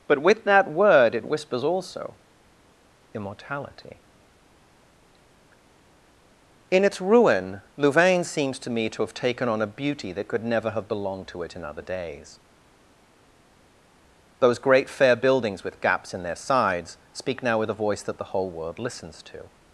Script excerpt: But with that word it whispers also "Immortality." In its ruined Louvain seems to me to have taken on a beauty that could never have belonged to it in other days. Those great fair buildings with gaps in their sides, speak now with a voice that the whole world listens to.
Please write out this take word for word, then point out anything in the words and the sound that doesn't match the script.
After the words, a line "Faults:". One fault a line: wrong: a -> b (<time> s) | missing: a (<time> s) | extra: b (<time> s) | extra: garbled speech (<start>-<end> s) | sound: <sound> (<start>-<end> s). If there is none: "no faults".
But with that word it whispers also "Immortality." In its ruin Louvain seems to me to have taken on a beauty that could never have belonged to it in other days. Those great fair buildings with gaps in their sides, speak now with a voice that the whole world listens to.
Faults:
wrong: ruined -> ruin (7.0 s)